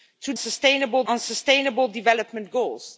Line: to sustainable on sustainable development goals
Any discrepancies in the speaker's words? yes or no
no